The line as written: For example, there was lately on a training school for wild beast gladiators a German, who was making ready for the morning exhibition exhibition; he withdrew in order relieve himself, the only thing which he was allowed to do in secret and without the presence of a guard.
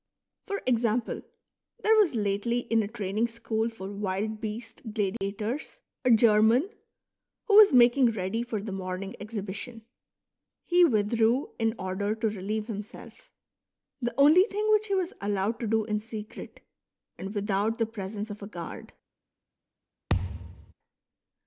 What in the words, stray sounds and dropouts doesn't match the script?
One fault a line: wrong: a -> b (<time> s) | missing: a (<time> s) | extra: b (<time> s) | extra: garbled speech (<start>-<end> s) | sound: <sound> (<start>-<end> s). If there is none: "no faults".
wrong: on -> in (2.6 s)
sound: dropout (5.2-5.2 s)
missing: exhibition (9.8 s)
extra: to (12.1 s)
sound: thud (20.1-20.7 s)